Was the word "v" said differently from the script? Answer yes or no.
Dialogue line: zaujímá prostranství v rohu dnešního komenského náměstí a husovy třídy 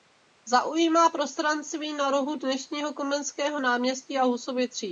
yes